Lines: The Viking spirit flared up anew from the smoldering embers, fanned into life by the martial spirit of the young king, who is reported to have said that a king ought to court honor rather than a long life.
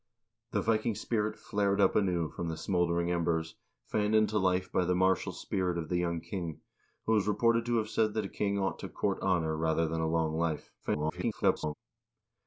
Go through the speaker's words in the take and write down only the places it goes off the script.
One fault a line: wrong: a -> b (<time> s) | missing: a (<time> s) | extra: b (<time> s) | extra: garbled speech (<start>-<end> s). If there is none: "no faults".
extra: garbled speech (10.8-11.7 s)